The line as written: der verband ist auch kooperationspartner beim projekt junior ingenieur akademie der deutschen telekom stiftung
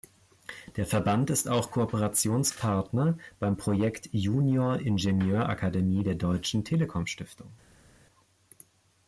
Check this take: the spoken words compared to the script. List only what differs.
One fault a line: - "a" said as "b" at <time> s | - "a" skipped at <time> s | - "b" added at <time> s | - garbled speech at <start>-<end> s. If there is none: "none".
none